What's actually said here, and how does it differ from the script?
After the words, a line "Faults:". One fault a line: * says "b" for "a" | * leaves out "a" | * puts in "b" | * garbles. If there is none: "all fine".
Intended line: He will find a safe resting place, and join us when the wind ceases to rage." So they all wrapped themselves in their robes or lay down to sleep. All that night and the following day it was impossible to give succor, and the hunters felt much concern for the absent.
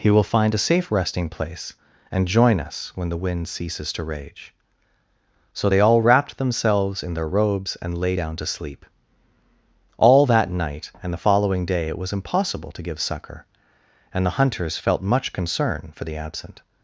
He will find a safe resting place, and join us when the wind ceases to rage." So they all wrapped themselves in their robes and lay down to sleep. All that night and the following day it was impossible to give succor, and the hunters felt much concern for the absent.
Faults:
* says "and" for "or"